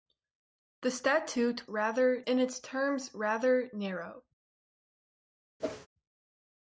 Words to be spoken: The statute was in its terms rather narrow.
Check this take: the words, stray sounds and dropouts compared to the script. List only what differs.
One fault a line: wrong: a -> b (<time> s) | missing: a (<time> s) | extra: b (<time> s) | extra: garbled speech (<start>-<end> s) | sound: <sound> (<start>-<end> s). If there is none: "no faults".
wrong: was -> rather (1.7 s)
sound: whoosh (5.6-5.9 s)